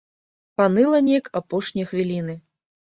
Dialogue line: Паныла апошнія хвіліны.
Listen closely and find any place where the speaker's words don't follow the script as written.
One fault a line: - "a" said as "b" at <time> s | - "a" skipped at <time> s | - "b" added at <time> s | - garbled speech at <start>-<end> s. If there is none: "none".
- "неяк" added at 1.1 s